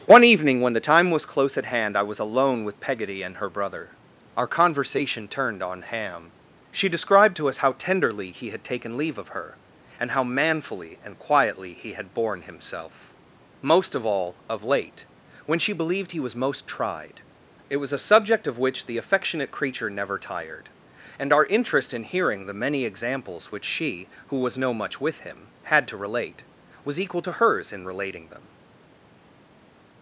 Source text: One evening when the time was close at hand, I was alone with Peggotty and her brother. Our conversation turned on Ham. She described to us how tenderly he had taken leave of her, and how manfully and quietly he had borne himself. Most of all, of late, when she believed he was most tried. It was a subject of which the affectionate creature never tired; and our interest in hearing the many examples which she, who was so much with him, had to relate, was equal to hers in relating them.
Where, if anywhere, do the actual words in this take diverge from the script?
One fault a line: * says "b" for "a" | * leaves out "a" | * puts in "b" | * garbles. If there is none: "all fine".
* says "no" for "so"